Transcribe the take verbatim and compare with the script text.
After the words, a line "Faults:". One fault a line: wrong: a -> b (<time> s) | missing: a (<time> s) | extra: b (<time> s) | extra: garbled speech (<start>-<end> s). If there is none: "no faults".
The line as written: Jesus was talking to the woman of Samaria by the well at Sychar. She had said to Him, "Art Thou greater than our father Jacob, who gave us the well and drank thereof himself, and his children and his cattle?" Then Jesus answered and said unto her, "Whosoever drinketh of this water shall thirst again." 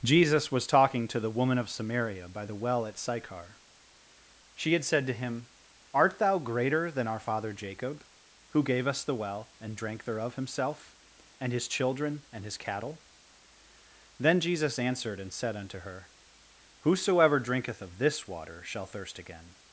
Jesus was talking to the woman of Samaria by the well at Sychar. She had said to Him, "Art Thou greater than our father Jacob, who gave us the well and drank thereof himself, and his children and his cattle?" Then Jesus answered and said unto her, "Whosoever drinketh of this water shall thirst again."
Faults:
no faults